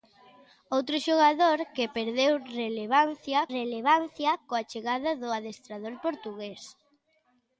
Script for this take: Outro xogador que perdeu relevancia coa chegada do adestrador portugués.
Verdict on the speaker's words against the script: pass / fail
fail